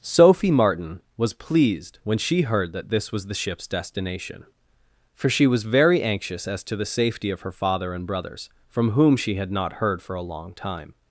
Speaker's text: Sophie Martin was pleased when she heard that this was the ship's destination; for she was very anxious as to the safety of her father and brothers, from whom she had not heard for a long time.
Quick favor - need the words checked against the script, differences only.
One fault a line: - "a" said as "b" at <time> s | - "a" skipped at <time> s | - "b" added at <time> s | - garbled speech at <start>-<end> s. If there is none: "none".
none